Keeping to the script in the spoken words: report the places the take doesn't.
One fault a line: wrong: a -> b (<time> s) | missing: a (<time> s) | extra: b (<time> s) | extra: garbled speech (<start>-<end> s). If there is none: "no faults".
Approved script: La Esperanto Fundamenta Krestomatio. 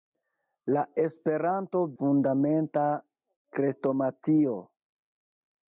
no faults